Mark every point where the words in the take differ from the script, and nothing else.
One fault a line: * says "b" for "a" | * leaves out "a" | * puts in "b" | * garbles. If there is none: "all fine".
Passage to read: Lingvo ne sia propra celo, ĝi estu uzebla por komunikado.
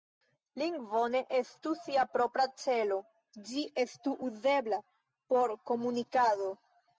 * puts in "estu"